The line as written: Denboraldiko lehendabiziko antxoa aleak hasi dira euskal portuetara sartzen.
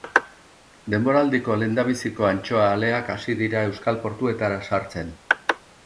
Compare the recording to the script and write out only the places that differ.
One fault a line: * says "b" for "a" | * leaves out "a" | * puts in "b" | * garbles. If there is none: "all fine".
all fine